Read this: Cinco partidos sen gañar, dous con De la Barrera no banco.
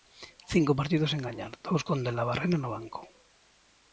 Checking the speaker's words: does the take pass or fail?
pass